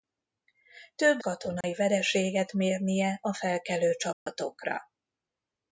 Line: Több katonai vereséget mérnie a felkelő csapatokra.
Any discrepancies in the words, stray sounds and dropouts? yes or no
yes